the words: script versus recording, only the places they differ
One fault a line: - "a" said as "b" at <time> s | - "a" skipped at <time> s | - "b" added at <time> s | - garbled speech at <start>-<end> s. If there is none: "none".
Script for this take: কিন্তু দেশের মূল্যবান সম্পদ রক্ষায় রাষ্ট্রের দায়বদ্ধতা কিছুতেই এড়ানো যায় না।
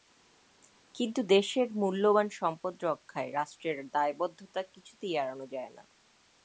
none